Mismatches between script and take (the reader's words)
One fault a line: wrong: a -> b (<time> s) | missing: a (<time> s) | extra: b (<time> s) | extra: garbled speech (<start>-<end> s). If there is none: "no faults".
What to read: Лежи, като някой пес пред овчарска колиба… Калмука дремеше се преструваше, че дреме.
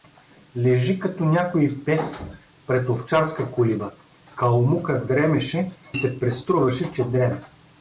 no faults